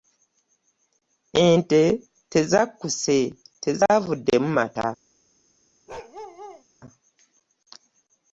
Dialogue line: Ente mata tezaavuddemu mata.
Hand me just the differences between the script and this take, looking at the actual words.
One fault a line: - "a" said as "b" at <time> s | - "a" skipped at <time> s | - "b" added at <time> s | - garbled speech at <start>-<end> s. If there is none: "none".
- "mata" said as "tezakkuse" at 2.3 s